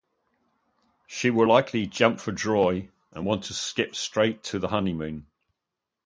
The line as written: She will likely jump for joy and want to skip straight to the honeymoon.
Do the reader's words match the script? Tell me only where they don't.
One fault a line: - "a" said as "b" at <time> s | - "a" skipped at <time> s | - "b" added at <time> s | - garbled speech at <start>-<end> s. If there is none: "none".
none